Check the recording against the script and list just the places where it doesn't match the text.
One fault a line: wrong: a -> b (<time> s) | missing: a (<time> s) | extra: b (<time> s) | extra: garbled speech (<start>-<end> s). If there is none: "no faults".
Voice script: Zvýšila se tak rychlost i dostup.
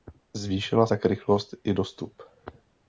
missing: se (0.9 s)